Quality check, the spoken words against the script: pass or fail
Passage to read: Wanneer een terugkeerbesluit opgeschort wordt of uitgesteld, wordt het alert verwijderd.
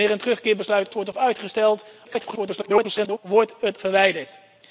fail